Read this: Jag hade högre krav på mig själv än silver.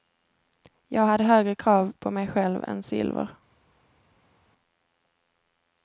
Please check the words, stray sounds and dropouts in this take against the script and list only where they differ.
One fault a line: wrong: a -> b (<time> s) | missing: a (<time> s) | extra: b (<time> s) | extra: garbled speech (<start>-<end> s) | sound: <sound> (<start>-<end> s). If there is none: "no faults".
no faults